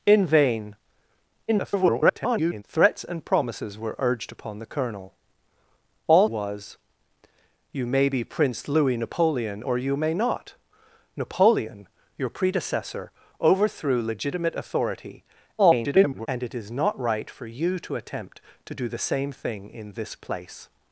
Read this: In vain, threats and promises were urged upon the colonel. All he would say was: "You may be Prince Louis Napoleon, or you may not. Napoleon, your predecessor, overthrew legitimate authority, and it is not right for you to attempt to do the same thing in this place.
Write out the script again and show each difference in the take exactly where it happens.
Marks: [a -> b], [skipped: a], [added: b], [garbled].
In vain, [garbled] threats and promises were urged upon the colonel. All [skipped: he would say] was: "You may be Prince Louis Napoleon, or you may not. Napoleon, your predecessor, overthrew legitimate authority, [garbled] and it is not right for you to attempt to do the same thing in this place.